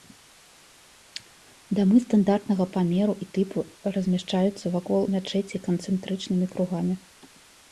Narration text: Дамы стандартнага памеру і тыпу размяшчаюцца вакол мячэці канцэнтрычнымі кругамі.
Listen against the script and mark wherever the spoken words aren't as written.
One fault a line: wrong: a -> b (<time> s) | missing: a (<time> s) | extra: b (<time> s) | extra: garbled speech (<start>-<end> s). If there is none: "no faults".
no faults